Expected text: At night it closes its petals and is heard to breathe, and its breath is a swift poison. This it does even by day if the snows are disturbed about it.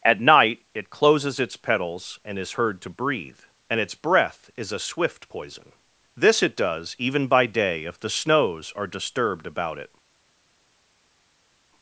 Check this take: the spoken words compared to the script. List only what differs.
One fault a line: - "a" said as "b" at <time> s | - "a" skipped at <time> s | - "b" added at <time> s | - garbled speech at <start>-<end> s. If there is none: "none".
none